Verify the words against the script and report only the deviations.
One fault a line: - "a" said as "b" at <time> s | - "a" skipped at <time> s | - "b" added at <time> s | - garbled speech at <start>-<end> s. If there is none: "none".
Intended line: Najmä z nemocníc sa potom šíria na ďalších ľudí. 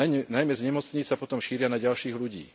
none